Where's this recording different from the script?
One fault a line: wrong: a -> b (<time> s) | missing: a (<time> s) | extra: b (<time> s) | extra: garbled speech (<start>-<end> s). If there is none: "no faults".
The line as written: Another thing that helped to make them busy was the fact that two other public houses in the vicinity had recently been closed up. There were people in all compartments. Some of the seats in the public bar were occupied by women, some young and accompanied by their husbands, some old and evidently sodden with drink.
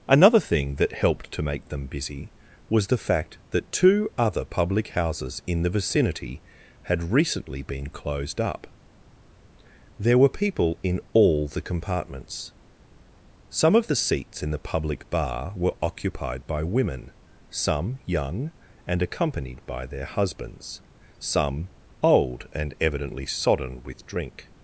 extra: the (11.5 s)